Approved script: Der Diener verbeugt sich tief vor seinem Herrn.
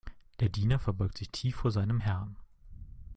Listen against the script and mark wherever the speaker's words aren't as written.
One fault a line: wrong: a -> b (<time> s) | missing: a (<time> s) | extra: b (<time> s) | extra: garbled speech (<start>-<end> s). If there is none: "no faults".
no faults